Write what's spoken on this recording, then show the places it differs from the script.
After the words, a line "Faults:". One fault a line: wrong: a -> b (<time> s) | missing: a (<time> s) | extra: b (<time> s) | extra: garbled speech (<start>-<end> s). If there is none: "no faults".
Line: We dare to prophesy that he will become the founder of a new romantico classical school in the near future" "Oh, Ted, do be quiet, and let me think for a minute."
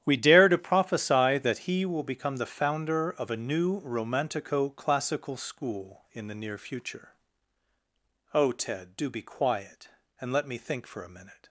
We dare to prophesy that he will become the founder of a new romantico classical school in the near future" "Oh, Ted, do be quiet, and let me think for a minute."
Faults:
no faults